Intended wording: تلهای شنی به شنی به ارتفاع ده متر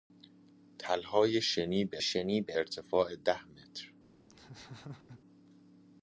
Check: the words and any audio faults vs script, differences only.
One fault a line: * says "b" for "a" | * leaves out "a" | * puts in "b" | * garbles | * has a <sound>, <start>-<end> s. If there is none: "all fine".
* has a laugh, 4.3-5.2 s